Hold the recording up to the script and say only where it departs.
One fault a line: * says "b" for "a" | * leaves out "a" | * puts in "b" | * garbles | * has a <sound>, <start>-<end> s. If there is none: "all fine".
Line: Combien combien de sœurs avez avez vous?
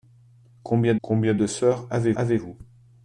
all fine